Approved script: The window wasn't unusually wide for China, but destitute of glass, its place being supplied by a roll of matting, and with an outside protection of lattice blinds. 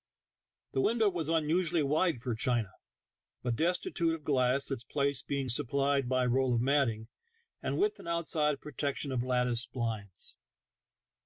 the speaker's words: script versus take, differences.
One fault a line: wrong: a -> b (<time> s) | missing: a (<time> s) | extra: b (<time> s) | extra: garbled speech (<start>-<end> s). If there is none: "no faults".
wrong: wasn't -> was (1.1 s)